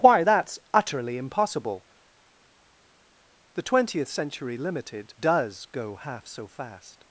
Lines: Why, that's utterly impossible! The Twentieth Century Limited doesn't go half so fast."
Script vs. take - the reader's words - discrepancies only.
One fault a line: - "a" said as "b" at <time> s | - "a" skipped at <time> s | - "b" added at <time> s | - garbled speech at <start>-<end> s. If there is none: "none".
- "doesn't" said as "does" at 5.2 s